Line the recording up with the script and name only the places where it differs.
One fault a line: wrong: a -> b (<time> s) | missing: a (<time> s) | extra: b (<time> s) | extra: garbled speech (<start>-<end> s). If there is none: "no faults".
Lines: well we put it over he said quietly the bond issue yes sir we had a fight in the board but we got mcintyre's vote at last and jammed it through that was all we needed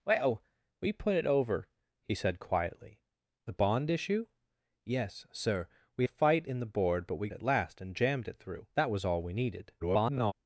missing: had (6.0 s)
missing: got mcintyre's vote (7.3 s)
extra: garbled speech (9.8-10.3 s)